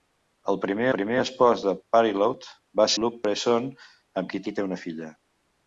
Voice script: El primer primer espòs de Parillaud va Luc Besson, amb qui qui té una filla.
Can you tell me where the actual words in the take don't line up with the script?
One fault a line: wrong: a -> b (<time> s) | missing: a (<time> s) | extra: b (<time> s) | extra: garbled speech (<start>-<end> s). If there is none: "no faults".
no faults